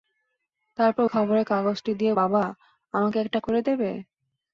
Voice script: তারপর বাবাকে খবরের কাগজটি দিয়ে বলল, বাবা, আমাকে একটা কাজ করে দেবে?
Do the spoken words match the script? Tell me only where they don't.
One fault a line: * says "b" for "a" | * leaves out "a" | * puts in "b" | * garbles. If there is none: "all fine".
* leaves out "বাবাকে"
* leaves out "বলল"
* leaves out "কাজ"